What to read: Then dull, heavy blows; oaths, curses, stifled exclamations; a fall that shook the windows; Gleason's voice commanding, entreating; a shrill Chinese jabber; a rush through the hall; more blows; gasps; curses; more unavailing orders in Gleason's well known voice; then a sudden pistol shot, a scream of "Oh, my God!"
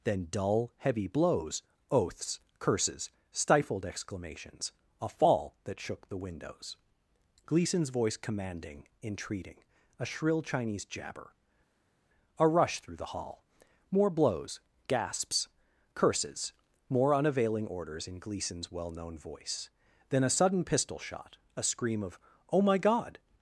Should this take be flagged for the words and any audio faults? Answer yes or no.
no